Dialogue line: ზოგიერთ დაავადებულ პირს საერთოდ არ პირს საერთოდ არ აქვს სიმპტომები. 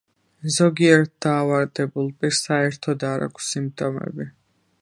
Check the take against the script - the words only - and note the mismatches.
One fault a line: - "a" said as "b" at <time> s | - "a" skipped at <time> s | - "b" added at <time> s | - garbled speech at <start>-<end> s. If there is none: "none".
- "პირს საერთოდ არ" skipped at 3.3 s